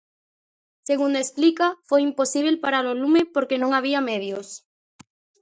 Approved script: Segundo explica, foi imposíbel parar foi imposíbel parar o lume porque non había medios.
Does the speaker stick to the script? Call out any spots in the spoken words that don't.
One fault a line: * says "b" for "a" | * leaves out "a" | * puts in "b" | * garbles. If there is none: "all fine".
* leaves out "foi imposíbel parar"